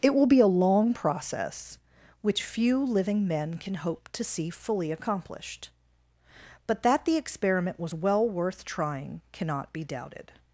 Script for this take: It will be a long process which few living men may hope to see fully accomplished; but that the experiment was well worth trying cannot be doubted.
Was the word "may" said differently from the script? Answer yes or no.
yes